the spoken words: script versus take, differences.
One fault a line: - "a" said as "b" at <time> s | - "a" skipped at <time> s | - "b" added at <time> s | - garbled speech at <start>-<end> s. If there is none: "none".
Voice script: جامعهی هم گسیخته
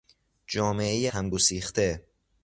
none